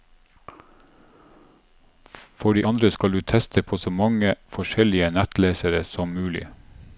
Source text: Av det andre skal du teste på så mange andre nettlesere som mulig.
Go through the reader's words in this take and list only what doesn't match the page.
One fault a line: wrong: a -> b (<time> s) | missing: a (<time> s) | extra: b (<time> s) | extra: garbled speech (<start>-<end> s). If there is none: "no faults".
wrong: Av -> For (2.3 s)
wrong: andre -> forskjellige (4.5 s)